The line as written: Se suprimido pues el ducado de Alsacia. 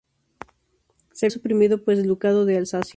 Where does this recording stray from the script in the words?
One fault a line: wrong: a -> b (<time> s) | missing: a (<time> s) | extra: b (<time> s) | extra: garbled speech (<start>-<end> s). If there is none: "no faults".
no faults